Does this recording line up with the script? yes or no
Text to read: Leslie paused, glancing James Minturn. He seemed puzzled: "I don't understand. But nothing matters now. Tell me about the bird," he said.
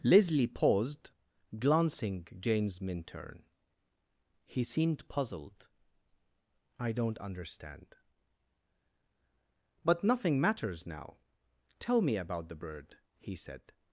yes